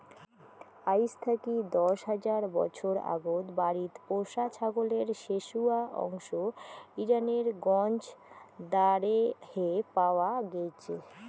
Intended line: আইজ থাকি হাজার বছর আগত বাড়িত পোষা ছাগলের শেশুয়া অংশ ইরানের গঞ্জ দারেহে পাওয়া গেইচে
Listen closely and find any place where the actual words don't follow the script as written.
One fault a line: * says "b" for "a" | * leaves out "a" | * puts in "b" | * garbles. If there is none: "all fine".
* puts in "দশ"